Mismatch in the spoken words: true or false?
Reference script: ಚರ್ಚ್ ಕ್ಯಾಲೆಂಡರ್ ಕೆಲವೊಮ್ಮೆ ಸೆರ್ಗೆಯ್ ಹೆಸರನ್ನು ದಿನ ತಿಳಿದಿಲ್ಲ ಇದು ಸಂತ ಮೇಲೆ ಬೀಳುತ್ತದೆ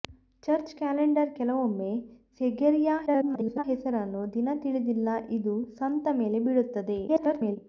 true